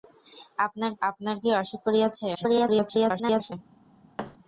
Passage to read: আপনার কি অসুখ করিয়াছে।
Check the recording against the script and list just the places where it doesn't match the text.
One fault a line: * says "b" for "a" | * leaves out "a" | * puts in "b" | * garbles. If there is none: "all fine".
* puts in "আপনার"
* garbles